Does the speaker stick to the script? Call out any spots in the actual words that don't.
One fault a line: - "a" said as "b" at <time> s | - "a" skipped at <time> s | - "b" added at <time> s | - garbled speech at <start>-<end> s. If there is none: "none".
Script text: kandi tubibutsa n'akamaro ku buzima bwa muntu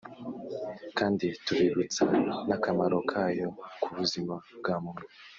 - "kayo" added at 3.1 s